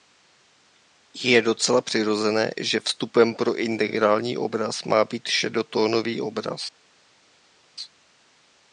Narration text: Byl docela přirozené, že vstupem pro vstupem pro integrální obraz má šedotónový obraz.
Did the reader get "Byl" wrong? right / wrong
wrong